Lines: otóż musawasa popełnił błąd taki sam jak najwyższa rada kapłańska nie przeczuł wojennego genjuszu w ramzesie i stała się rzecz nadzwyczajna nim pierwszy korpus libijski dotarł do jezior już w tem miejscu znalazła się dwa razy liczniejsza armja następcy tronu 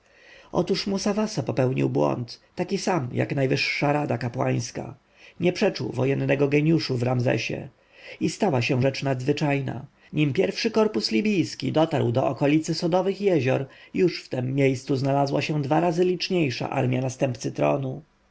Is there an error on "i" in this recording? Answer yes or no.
no